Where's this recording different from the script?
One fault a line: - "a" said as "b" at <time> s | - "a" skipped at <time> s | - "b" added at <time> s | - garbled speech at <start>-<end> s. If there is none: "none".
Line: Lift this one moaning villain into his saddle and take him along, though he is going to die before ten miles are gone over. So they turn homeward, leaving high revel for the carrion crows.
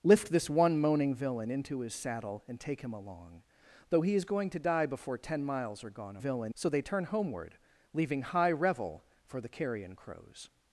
- "over" said as "villain" at 6.2 s